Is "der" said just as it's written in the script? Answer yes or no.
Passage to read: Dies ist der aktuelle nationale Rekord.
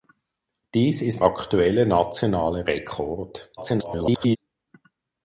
no